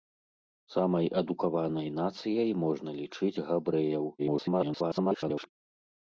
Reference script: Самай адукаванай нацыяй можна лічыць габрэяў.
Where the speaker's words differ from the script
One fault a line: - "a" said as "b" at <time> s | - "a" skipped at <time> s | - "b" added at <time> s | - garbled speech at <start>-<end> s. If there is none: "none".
- garbled speech at 4.2-5.5 s